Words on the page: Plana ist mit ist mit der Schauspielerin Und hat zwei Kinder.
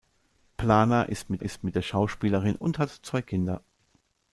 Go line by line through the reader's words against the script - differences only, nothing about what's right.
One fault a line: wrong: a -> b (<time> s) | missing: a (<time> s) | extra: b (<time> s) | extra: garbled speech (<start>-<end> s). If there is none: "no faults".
no faults